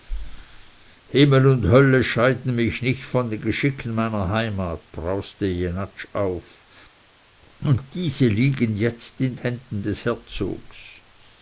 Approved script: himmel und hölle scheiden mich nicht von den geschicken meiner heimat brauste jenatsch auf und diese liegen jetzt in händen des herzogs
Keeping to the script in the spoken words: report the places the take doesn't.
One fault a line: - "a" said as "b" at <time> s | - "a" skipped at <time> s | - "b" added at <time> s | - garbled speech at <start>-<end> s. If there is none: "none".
none